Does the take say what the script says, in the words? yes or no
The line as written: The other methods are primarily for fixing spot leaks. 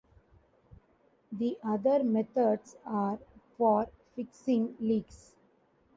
no